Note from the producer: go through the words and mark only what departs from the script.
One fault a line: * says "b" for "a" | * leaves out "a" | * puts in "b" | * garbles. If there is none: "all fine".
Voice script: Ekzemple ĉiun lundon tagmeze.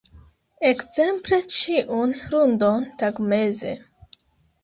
all fine